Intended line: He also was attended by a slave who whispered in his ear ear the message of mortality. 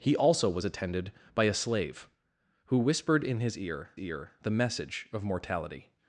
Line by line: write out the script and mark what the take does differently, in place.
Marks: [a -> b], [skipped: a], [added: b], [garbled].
He also was attended by a slave who whispered in his ear ear the message of mortality.